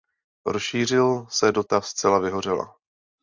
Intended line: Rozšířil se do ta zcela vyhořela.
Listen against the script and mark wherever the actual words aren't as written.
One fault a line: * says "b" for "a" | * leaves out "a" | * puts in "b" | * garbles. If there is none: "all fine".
all fine